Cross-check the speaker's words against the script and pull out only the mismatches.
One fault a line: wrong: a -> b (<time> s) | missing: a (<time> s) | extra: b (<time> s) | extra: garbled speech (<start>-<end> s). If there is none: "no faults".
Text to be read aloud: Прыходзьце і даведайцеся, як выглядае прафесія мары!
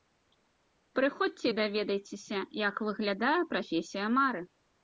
no faults